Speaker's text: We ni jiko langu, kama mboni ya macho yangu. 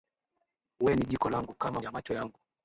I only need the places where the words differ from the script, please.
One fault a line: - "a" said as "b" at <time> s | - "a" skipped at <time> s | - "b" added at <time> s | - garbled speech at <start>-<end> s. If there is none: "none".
- "mboni" skipped at 1.8 s